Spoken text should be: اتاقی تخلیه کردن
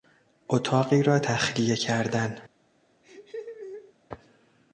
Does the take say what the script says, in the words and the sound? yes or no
no